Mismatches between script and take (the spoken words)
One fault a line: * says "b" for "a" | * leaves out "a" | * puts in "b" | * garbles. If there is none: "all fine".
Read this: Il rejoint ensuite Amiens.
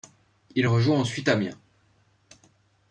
all fine